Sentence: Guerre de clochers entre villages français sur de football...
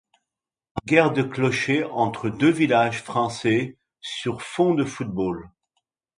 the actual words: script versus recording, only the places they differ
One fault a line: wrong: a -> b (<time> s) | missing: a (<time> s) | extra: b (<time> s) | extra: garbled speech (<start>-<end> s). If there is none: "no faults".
extra: deux (2.3 s)
extra: fond (4.4 s)